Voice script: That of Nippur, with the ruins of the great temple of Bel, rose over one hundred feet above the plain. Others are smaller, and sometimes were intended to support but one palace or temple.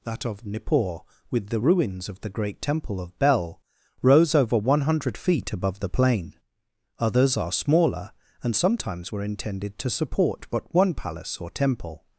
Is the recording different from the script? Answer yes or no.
no